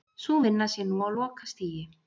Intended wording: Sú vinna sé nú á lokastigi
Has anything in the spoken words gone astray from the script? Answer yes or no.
no